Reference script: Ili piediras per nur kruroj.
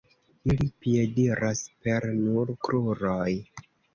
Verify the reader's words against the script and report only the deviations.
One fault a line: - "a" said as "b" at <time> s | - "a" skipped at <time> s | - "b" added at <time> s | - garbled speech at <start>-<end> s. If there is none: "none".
none